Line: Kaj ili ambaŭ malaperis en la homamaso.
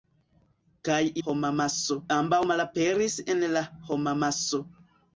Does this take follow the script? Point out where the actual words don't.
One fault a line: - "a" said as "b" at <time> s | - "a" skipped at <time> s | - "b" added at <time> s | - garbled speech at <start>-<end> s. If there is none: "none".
- "ili" said as "homamaso" at 1.3 s